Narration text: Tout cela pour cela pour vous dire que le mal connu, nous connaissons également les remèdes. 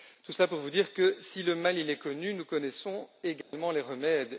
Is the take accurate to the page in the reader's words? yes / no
no